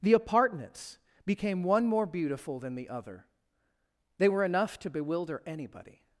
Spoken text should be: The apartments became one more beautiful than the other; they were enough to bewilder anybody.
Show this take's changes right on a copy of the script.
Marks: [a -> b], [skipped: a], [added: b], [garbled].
The apartments became one more beautiful than the other; they were enough to bewilder anybody.